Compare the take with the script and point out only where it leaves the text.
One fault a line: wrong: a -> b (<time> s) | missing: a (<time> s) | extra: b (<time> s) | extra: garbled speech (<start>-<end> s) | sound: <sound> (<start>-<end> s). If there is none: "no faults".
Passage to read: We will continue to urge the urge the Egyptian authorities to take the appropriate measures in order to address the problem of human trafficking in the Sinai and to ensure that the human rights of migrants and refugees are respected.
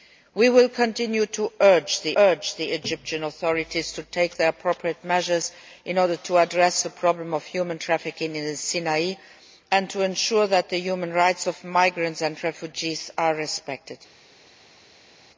no faults